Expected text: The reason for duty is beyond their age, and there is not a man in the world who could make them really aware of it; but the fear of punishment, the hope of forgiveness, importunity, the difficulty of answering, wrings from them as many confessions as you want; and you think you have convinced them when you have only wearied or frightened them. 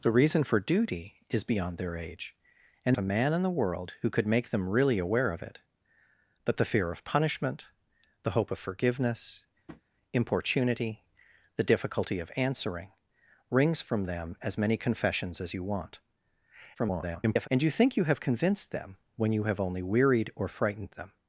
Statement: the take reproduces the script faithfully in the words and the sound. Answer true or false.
false